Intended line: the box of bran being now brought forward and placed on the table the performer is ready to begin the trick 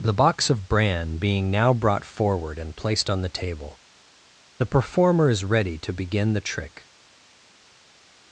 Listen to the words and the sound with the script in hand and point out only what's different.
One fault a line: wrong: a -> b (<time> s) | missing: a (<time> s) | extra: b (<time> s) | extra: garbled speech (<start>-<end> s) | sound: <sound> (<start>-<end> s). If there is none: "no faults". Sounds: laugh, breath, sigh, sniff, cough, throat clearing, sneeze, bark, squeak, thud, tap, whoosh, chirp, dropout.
no faults